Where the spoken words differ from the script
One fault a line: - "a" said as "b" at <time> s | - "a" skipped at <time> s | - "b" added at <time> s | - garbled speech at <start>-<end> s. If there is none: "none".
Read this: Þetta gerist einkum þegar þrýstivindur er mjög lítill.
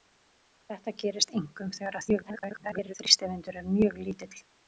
- garbled speech at 2.1-2.9 s